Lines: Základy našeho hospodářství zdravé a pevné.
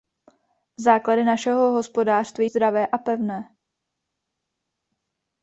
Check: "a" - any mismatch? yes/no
no